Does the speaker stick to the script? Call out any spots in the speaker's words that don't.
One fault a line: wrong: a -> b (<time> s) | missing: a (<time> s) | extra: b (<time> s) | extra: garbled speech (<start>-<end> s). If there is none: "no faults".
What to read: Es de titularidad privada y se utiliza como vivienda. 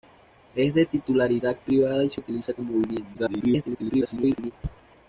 extra: garbled speech (3.1-4.5 s)